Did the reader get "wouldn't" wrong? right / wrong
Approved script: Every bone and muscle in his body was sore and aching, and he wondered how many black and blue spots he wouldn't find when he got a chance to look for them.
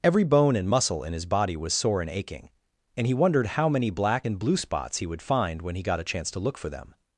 wrong